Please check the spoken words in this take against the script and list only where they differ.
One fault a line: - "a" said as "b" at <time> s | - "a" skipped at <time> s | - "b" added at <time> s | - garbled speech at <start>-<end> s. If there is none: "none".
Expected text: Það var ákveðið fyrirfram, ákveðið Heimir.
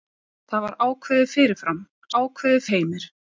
none